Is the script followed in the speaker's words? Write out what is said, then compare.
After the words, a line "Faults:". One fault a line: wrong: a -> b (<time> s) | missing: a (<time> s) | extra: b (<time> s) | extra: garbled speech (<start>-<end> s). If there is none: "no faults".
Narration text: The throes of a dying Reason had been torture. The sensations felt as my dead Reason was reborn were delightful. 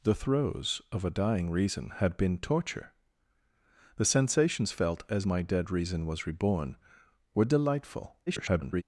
The throes of a dying Reason had been torture. The sensations felt as my dead Reason was reborn were delightful. [garbled]
Faults:
extra: garbled speech (8.3-8.8 s)